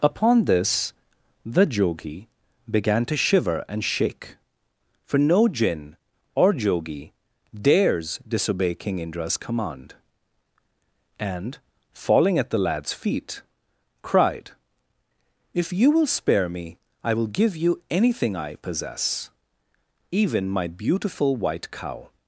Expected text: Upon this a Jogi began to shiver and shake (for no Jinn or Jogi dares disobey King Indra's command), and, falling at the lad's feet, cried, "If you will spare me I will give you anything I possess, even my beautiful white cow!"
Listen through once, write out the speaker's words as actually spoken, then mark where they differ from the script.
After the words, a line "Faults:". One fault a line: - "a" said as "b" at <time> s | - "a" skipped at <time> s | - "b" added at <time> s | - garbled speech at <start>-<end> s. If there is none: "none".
Upon this the Jogi began to shiver and shake (for no Jinn or Jogi dares disobey King Indra's command), and, falling at the lad's feet, cried, "If you will spare me I will give you anything I possess, even my beautiful white cow!"
Faults:
- "a" said as "the" at 1.4 s